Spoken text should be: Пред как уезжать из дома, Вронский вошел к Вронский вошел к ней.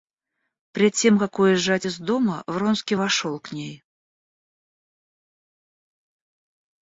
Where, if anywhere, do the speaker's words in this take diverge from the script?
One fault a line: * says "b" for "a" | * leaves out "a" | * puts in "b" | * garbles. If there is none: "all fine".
* puts in "тем"
* leaves out "Вронский вошел к"